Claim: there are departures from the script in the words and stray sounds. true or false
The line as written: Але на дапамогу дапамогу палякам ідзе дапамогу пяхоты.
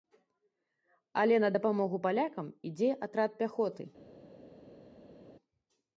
true